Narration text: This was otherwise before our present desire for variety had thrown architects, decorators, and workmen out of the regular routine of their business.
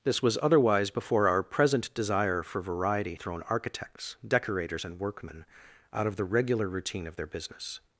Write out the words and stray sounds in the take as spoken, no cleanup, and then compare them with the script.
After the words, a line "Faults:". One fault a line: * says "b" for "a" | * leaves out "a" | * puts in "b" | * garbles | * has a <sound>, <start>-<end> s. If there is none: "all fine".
This was otherwise before our present desire for variety thrown architects, decorators, and workmen out of the regular routine of their business.
Faults:
* leaves out "had"